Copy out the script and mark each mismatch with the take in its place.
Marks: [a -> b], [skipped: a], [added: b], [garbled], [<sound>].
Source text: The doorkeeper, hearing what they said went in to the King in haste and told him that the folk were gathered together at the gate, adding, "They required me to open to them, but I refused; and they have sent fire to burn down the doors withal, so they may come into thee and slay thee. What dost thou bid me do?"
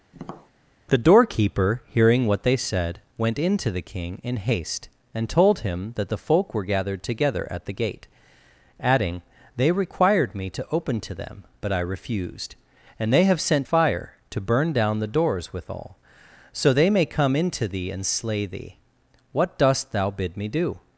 [tap] The doorkeeper, hearing what they said went in to the King in haste and told him that the folk were gathered together at the gate, adding, "They required me to open to them, but I refused; and they have sent fire to burn down the doors withal, so they may come into thee and slay thee. What dost thou bid me do?"